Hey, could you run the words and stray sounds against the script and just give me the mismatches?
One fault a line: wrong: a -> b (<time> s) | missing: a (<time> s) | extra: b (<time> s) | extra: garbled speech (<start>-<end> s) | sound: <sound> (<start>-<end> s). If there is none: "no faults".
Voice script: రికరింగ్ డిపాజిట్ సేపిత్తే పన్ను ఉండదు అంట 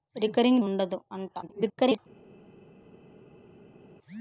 missing: డిపాజిట్ సేపిత్తే పన్ను (0.6 s)
extra: garbled speech (1.4-2.0 s)